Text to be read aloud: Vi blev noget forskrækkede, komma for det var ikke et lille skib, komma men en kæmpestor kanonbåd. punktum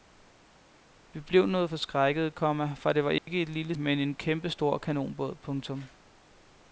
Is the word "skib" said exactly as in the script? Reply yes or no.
no